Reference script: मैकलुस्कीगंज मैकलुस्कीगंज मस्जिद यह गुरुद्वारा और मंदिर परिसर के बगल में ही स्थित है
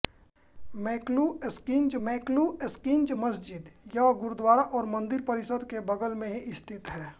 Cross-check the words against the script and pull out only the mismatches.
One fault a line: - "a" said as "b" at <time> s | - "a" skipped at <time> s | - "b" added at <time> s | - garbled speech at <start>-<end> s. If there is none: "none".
none